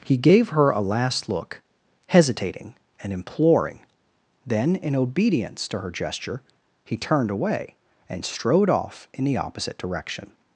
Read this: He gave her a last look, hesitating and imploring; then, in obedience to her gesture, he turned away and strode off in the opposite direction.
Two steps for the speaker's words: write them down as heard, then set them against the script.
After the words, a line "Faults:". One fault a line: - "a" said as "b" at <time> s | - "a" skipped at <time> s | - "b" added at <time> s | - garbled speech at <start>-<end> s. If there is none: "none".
He gave her a last look, hesitating and imploring; then, in obedience to her gesture, he turned away and strode off in the opposite direction.
Faults:
none